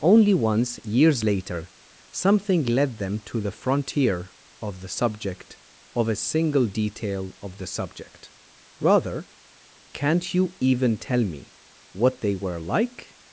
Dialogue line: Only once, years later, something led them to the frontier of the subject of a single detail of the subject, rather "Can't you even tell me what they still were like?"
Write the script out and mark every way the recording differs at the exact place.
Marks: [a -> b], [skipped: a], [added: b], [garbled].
Only once, years later, something led them to the frontier of the subject of a single detail of the subject, rather "Can't you even tell me what they [skipped: still] were like?"